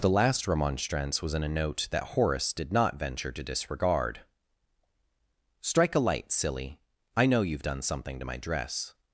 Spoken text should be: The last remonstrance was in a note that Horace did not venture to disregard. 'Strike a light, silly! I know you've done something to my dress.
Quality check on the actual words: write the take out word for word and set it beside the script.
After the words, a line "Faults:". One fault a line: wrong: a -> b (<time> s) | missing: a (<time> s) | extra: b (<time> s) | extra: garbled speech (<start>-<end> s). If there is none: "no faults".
The last remonstrance was in a note that Horace did not venture to disregard. 'Strike a light, silly! I know you've done something to my dress.
Faults:
no faults